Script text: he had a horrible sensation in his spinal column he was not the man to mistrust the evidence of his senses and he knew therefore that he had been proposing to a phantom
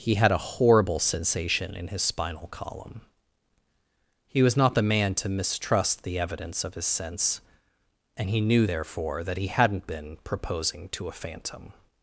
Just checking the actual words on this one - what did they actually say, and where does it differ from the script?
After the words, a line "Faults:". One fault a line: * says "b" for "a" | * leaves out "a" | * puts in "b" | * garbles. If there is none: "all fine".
he had a horrible sensation in his spinal column he was not the man to mistrust the evidence of his sense and he knew therefore that he hadn't been proposing to a phantom
Faults:
* says "sense" for "senses"
* says "hadn't" for "had"